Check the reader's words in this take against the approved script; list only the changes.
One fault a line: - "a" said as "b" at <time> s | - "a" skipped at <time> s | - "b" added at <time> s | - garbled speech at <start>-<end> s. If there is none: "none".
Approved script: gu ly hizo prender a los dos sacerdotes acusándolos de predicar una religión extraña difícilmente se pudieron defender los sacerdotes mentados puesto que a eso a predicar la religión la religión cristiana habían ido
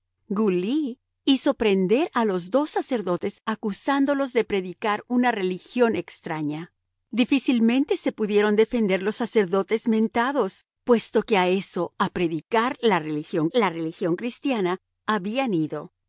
none